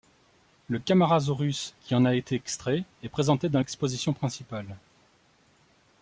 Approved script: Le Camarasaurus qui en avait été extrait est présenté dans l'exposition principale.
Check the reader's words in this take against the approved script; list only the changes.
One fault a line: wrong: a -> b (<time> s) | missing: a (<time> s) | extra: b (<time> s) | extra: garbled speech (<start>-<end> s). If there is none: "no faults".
wrong: avait -> a (2.0 s)